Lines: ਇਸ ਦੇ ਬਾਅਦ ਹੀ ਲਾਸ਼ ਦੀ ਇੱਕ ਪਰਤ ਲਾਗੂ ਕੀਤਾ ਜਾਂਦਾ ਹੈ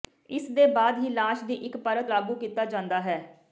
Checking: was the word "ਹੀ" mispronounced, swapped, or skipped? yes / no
no